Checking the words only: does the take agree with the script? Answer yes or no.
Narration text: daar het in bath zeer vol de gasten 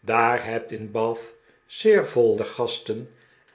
yes